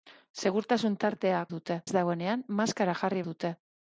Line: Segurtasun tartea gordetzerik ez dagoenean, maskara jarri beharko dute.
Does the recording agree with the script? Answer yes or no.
no